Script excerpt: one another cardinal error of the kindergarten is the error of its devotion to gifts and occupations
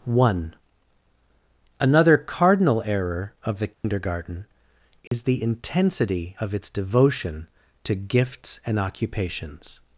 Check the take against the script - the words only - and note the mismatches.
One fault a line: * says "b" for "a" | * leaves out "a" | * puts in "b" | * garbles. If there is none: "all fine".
* says "intensity" for "error"